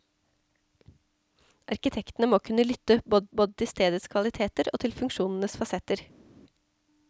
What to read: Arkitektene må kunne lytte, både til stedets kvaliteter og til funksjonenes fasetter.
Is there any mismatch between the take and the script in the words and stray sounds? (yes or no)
yes